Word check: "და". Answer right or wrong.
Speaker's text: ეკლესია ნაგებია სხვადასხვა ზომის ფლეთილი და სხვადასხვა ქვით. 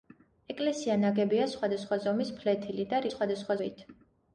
right